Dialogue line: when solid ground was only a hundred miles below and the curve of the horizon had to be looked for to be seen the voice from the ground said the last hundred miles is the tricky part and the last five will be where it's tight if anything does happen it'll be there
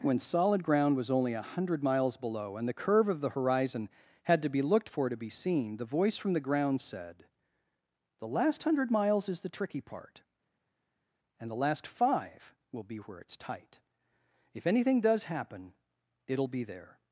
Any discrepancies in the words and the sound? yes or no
no